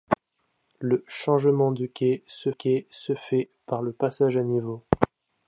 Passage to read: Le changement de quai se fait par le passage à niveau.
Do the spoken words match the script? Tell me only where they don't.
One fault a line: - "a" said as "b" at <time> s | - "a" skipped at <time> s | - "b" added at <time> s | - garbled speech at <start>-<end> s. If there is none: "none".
- "quai se" added at 2.5 s